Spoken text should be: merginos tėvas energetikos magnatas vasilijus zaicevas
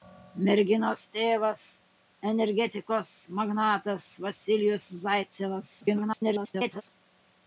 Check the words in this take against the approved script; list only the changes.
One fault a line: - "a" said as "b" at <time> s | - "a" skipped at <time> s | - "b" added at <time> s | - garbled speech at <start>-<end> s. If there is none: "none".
- garbled speech at 5.8-6.8 s